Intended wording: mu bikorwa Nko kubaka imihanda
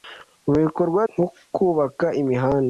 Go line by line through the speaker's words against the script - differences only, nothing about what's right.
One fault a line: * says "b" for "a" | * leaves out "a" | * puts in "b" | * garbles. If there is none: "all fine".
all fine